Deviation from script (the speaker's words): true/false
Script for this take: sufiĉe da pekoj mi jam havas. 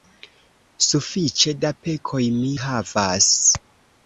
true